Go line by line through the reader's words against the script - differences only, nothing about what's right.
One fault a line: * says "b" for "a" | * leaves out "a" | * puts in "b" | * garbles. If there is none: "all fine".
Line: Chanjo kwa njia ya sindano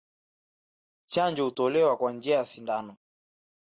* puts in "hutolewa"